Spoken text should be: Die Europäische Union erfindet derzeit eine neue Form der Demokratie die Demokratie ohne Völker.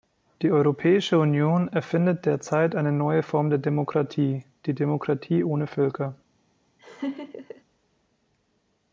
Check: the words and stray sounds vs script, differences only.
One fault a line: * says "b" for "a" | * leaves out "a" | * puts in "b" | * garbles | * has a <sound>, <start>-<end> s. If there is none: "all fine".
* has a laugh, 6.8-7.6 s